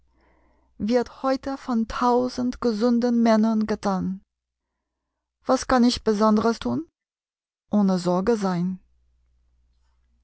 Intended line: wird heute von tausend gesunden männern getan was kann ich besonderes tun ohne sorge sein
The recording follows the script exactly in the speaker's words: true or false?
true